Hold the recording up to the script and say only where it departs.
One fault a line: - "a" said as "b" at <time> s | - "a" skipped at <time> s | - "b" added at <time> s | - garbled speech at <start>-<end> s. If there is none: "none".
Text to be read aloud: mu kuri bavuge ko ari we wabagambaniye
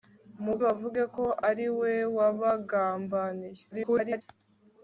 - "kuri" skipped at 0.6 s
- garbled speech at 3.7-4.2 s